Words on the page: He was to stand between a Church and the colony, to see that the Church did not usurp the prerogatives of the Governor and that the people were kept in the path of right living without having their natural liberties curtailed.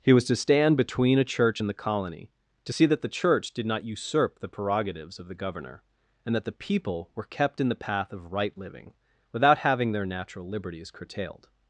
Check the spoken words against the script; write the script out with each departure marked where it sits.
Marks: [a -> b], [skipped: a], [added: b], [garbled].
He was to stand between a Church and the colony, to see that the Church did not usurp the prerogatives of the Governor and that the people were kept in the path of right living without having their natural liberties curtailed.